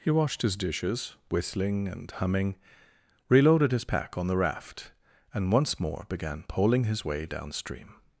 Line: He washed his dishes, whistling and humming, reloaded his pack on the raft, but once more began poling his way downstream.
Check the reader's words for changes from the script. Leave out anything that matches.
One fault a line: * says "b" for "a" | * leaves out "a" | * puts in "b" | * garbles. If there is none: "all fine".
* says "and" for "but"